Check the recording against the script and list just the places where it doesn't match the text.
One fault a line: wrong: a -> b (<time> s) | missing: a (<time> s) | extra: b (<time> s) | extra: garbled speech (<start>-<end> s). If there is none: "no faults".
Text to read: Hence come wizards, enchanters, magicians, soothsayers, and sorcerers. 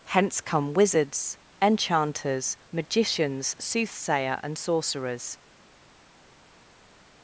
wrong: soothsayers -> soothsayer (3.6 s)